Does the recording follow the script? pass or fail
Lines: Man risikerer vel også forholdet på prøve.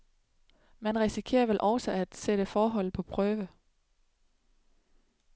fail